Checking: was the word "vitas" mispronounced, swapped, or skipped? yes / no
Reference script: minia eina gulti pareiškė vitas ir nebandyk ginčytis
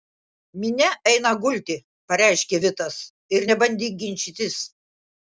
no